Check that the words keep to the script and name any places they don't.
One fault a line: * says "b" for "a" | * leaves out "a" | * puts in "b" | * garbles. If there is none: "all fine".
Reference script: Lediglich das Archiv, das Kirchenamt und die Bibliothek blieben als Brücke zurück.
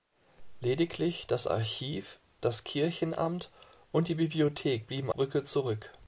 * leaves out "als"